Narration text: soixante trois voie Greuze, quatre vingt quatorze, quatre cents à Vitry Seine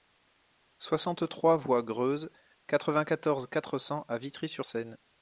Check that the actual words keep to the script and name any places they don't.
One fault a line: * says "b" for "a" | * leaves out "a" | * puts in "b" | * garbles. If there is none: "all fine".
* puts in "sur"